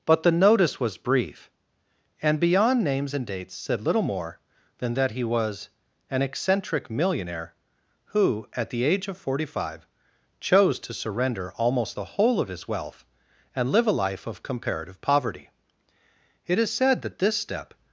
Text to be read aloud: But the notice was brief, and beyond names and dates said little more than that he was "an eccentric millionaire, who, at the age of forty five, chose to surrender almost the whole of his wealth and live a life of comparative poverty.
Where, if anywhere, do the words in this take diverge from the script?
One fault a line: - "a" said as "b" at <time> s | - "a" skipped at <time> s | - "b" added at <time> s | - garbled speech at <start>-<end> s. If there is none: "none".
- "It is said that this step" added at 16.5 s